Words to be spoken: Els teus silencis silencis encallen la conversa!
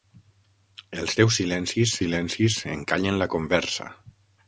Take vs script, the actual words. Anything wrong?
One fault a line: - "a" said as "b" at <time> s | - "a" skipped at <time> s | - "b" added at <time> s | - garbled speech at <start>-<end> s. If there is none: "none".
none